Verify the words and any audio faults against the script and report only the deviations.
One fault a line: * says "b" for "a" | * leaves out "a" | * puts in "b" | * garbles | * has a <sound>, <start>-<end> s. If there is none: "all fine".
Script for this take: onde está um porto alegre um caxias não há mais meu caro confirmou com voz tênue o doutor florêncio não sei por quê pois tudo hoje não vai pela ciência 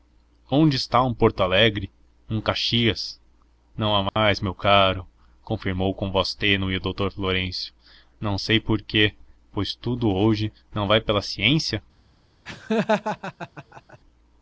* has a dropout, 4.1-4.2 s
* has a laugh, 12.5-14.0 s